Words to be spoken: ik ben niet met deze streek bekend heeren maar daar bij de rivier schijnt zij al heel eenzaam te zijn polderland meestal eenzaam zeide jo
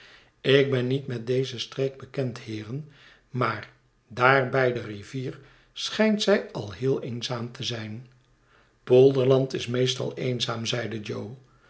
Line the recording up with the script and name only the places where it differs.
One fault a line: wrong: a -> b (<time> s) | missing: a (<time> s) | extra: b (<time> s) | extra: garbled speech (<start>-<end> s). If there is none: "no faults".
extra: is (9.5 s)